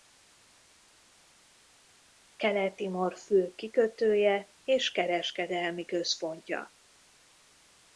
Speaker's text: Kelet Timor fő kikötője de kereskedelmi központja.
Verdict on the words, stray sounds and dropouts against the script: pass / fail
fail